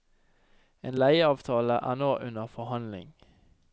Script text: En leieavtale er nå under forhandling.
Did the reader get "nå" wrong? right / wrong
right